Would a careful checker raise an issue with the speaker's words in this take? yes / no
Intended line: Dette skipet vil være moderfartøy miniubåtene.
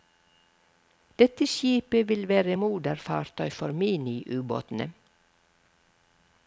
yes